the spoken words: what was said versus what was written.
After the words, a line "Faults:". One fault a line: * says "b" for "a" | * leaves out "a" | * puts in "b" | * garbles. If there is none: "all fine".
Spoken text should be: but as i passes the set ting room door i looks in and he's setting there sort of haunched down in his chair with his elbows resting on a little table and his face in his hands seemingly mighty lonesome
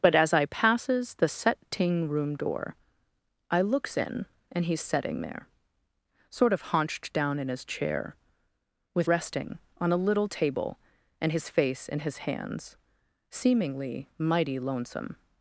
but as i passes the set ting room door i looks in and he's setting there sort of haunched down in his chair with resting on a little table and his face in his hands seemingly mighty lonesome
Faults:
* leaves out "his elbows"